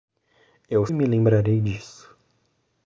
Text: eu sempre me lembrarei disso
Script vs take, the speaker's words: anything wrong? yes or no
yes